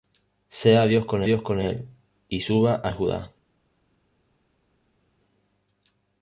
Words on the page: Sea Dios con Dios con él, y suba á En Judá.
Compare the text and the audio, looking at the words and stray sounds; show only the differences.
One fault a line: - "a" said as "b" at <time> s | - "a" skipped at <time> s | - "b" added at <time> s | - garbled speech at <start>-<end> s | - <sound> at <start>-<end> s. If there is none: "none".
none